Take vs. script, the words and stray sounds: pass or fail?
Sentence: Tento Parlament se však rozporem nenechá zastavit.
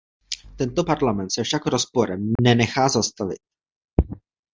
fail